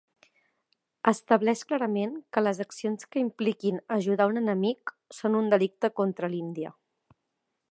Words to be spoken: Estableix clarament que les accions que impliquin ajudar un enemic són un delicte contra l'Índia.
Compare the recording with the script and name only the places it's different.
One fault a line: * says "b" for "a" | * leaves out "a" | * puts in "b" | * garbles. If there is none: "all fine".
all fine